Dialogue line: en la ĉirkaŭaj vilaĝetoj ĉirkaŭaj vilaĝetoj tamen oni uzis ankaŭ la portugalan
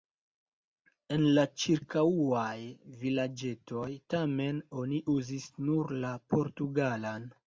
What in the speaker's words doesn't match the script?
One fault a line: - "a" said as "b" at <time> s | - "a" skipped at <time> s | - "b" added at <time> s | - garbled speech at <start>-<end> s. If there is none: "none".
- "ĉirkaŭaj vilaĝetoj" skipped at 3.8 s
- "ankaŭ" said as "nur" at 5.7 s